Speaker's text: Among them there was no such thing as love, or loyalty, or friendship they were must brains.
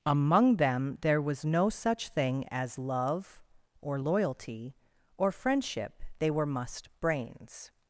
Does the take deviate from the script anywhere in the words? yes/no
no